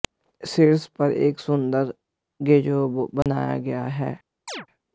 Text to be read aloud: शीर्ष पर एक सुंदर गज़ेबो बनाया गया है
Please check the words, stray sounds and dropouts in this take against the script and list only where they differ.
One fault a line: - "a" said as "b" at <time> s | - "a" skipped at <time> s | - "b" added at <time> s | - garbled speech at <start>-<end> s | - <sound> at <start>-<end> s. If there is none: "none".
- dropout at 3.2-3.3 s
- chirp at 4.5-4.7 s